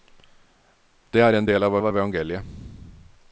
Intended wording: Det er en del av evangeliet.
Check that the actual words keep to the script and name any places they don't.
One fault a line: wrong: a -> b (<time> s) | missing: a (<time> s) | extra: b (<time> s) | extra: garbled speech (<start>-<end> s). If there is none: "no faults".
extra: av (1.8 s)